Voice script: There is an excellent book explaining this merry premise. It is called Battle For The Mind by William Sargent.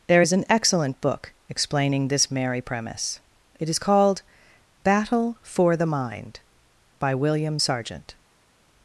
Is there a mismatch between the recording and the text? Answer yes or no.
no